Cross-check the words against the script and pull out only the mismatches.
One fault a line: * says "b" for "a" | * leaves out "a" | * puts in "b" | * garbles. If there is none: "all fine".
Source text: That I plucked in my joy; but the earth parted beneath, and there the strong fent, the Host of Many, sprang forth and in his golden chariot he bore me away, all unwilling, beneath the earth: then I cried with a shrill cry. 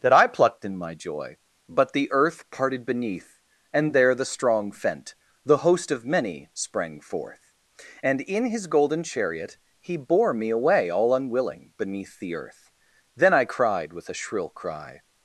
all fine